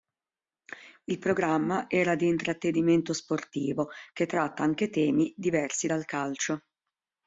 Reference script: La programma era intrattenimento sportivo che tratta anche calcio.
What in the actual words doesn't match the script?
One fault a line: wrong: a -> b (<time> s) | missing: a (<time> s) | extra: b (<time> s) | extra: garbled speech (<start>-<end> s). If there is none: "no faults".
wrong: La -> Il (1.0 s)
extra: di (2.1 s)
extra: temi diversi dal (4.9 s)